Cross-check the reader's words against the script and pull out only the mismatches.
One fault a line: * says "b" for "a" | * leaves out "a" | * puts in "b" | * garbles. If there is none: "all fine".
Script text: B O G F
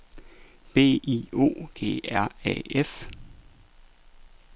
* puts in "I"
* puts in "R A"